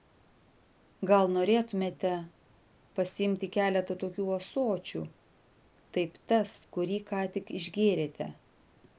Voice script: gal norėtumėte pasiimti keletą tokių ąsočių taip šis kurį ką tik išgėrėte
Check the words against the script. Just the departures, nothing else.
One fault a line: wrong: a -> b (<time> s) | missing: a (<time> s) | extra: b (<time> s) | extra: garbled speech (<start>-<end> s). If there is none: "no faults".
wrong: šis -> tas (6.3 s)